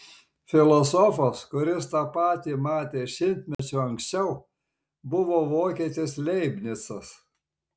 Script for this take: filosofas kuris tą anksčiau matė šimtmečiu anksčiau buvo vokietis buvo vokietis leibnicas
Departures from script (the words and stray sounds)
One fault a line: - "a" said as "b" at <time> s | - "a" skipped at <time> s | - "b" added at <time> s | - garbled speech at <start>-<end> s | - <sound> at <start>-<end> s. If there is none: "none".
- "anksčiau" said as "patį" at 2.1 s
- dropout at 3.5-3.6 s
- "buvo vokietis" skipped at 6.2 s